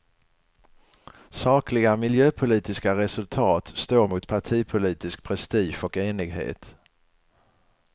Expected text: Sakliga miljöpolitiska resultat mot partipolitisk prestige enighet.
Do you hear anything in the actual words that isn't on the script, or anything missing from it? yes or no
yes